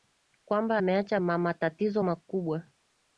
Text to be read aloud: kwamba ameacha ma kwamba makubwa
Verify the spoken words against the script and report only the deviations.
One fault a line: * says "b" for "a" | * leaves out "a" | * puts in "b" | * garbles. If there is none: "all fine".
* says "matatizo" for "kwamba"